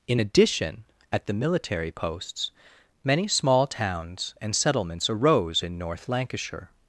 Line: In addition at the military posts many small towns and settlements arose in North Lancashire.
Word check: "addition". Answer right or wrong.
right